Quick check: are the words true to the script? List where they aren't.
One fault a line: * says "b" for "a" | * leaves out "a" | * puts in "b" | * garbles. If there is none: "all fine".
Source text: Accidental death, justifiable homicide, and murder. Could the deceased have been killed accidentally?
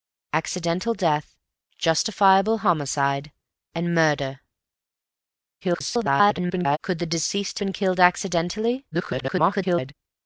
* garbles
* leaves out "have"
* garbles